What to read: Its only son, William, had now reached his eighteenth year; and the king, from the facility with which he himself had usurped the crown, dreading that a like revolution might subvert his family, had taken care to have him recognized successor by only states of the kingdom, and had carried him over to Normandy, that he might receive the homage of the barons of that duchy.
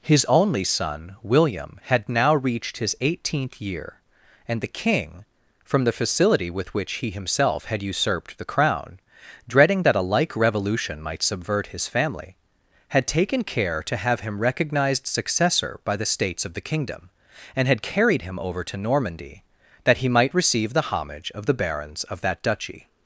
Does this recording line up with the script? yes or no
no